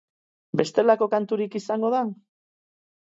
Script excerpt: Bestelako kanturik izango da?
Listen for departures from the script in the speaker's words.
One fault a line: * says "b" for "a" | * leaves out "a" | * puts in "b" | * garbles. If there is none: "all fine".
all fine